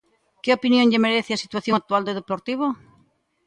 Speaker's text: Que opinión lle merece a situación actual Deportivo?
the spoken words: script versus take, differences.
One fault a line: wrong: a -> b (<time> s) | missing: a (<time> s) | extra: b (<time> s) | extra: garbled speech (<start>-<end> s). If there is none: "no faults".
extra: do (2.0 s)